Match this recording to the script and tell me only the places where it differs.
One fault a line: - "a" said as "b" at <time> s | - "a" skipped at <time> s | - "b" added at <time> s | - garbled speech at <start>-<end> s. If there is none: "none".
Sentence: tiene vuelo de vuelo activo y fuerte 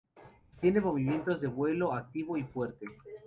- "vuelo" said as "movimientos" at 0.8 s